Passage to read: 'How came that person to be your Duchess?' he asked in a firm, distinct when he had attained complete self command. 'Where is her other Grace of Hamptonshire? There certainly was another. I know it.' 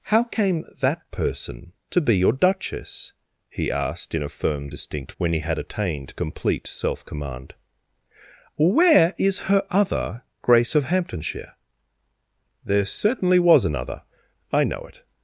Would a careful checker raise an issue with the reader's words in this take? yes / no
no